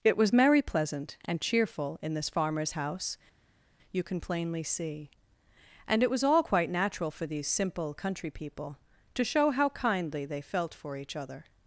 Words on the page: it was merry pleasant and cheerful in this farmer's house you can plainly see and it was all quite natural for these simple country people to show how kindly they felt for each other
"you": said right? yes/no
yes